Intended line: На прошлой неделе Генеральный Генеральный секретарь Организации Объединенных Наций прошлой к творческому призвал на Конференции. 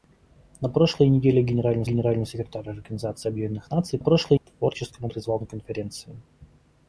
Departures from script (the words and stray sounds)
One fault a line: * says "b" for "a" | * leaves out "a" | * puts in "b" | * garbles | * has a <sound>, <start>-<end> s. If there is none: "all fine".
all fine